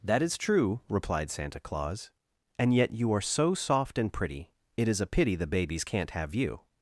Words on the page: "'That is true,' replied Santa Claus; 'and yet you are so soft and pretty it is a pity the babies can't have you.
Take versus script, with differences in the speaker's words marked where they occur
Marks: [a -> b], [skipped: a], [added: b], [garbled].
"'That is true,' replied Santa Claus; 'and yet you are so soft and pretty it is a pity the babies can't have you.